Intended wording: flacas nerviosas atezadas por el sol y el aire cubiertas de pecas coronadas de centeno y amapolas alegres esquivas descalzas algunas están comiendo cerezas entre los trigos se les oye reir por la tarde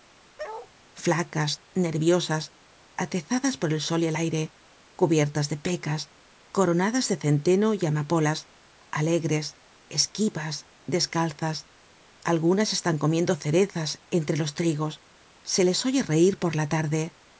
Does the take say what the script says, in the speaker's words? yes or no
yes